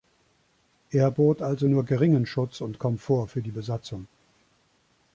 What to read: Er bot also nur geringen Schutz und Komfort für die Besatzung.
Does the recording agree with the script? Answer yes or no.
yes